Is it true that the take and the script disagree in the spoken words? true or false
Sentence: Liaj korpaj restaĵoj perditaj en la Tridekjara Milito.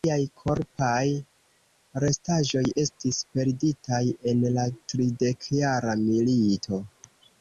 true